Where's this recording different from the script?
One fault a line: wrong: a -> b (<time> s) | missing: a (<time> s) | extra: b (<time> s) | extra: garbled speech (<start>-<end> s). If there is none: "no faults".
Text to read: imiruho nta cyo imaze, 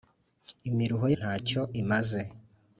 no faults